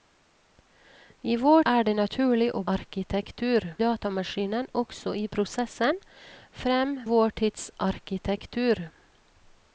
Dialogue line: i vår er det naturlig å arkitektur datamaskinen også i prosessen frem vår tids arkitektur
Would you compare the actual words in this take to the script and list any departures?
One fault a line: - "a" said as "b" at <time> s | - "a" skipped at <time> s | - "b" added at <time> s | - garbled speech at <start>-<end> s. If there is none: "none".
none